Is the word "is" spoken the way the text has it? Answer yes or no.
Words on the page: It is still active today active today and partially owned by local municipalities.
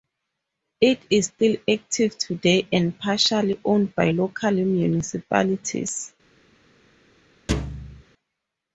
yes